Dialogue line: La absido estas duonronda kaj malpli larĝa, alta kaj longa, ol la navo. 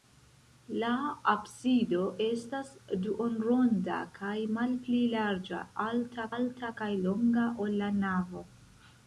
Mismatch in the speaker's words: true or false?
true